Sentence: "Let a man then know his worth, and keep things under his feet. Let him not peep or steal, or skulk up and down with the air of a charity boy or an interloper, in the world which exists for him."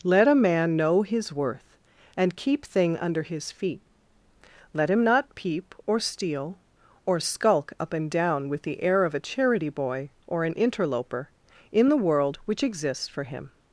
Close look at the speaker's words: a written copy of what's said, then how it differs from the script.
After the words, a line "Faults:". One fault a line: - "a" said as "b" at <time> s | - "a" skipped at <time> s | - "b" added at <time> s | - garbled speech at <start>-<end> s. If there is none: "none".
"Let a man know his worth, and keep thing under his feet. Let him not peep or steal, or skulk up and down with the air of a charity boy or an interloper, in the world which exists for him."
Faults:
- "then" skipped at 0.8 s
- "things" said as "thing" at 2.6 s